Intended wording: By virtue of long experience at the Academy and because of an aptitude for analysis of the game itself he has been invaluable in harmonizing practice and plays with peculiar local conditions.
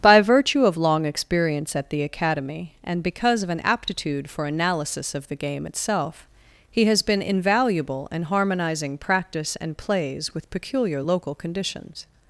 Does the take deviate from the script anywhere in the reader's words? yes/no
no